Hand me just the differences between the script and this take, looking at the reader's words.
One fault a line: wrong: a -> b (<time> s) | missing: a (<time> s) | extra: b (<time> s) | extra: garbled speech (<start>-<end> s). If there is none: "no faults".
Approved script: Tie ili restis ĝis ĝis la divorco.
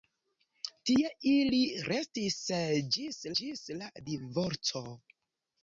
no faults